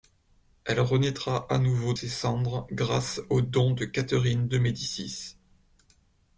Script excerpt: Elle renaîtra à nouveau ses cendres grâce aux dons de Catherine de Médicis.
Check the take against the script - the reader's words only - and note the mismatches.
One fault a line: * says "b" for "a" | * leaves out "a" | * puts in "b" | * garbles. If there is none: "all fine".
all fine